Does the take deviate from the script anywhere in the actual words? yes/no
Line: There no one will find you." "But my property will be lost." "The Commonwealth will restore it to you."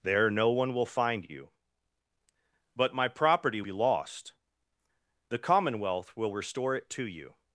yes